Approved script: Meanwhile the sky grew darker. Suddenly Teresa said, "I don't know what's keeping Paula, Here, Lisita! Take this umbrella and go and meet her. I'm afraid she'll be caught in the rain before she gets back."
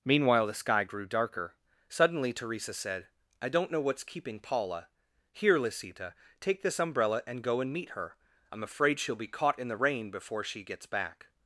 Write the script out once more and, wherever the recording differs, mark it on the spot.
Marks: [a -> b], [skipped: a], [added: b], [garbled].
Meanwhile the sky grew darker. Suddenly Teresa said, "I don't know what's keeping Paula, Here, Lisita! Take this umbrella and go and meet her. I'm afraid she'll be caught in the rain before she gets back."